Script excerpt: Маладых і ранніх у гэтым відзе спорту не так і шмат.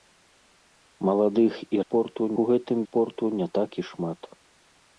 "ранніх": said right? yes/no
no